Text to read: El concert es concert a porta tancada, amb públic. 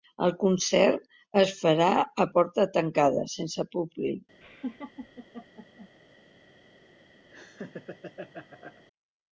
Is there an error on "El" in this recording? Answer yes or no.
no